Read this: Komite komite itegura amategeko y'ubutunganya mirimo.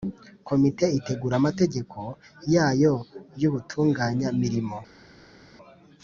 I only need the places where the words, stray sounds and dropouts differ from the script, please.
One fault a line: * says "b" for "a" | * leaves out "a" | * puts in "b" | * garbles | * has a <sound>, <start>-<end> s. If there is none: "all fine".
* leaves out "komite"
* puts in "yayo"